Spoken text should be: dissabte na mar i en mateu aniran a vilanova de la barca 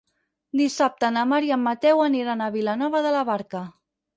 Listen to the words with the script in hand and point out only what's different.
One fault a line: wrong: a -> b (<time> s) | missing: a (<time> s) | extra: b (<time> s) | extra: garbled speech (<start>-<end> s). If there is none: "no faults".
no faults